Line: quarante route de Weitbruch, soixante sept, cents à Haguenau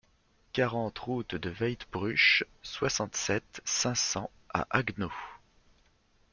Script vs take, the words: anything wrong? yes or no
yes